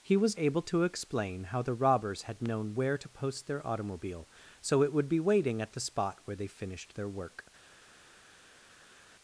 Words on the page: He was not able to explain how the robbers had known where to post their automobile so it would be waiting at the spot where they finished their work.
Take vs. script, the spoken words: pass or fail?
fail